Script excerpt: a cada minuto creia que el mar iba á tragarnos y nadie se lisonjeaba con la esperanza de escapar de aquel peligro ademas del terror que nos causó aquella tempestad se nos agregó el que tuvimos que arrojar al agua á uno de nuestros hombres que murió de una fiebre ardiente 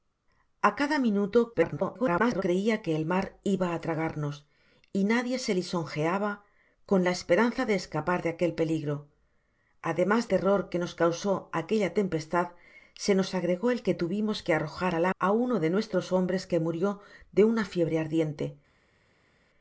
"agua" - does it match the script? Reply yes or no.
no